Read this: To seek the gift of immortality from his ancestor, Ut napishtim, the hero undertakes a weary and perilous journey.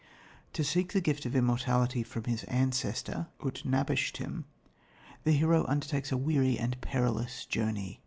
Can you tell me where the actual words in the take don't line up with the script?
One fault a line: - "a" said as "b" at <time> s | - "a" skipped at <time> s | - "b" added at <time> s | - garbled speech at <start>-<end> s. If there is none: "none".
none